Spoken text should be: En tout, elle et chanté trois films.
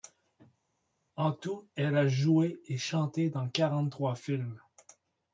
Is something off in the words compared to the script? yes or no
yes